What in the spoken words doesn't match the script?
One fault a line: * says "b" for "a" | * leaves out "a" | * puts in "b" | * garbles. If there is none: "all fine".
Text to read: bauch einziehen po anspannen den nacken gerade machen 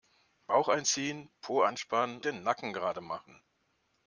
all fine